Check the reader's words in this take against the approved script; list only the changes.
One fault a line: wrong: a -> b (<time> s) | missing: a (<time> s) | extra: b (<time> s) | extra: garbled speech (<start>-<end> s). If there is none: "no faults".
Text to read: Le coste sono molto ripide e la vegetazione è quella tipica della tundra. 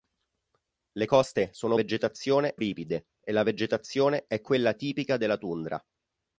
wrong: molto -> vegetazione (1.7 s)